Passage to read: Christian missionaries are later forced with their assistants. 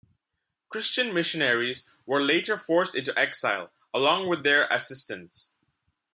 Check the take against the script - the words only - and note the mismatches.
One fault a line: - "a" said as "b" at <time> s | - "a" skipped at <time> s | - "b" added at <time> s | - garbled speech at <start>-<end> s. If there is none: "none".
- "are" said as "were" at 2.1 s
- "into exile along" added at 3.0 s